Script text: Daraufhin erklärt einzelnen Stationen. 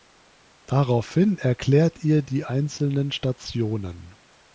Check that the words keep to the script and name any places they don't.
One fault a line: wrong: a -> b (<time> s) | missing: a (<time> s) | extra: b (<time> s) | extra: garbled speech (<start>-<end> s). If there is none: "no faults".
extra: ihr die (2.0 s)